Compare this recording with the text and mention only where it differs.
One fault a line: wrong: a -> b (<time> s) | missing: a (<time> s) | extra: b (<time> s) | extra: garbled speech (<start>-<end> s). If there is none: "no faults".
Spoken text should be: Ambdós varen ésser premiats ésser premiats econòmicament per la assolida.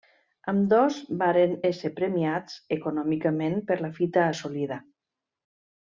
missing: ésser premiats (2.6 s)
extra: fita (4.0 s)